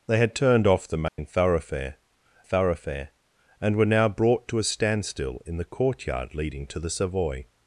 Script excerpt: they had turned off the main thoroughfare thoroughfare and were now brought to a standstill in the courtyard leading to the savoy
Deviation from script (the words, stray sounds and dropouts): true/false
true